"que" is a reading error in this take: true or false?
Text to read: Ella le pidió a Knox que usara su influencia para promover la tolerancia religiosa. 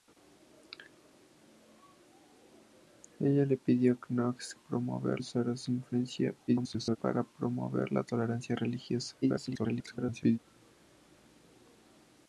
true